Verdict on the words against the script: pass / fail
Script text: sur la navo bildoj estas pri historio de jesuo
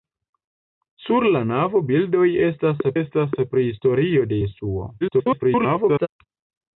fail